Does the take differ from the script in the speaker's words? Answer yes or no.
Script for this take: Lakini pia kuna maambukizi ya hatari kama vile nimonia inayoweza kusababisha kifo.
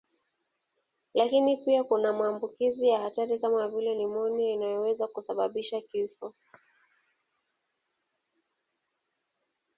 no